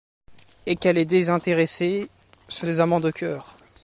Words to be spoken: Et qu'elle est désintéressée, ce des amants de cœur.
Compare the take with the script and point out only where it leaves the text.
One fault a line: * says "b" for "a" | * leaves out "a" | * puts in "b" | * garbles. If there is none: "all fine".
all fine